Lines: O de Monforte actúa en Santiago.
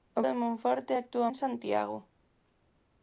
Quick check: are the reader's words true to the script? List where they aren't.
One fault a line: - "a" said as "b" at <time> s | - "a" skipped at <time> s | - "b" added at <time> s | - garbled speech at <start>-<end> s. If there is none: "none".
none